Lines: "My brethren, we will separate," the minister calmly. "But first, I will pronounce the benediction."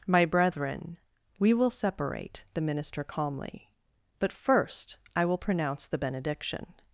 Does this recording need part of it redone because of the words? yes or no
no